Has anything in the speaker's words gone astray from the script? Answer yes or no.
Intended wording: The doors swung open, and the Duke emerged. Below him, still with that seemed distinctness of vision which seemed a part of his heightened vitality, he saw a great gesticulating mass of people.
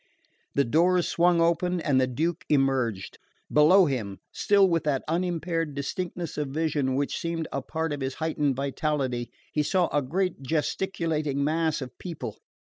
yes